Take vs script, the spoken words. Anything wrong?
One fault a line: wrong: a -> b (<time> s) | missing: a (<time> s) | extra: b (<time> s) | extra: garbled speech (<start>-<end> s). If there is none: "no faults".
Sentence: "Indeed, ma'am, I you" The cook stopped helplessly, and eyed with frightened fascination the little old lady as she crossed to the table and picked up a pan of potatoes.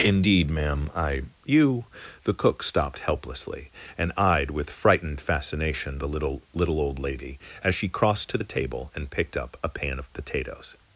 extra: little (6.5 s)